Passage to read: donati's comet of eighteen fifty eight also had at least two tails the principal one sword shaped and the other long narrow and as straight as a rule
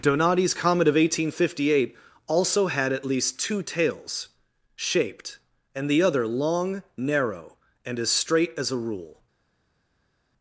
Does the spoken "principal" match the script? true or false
false